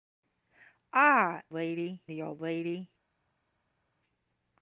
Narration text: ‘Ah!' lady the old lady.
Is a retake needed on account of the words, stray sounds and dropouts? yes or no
no